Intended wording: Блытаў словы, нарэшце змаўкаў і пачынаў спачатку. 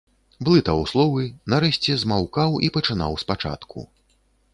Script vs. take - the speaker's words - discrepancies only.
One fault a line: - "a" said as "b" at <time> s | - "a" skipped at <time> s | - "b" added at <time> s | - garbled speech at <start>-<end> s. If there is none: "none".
none